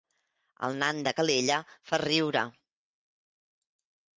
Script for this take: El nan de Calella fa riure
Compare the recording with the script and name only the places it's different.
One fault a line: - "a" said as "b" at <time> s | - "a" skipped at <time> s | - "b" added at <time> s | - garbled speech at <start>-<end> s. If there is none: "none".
none